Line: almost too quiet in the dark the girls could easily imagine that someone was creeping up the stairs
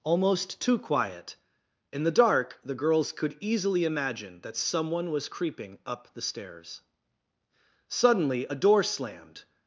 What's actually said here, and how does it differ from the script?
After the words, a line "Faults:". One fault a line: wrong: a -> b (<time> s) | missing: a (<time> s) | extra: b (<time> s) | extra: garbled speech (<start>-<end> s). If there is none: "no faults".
almost too quiet in the dark the girls could easily imagine that someone was creeping up the stairs suddenly a door slammed
Faults:
extra: suddenly a door slammed (7.9 s)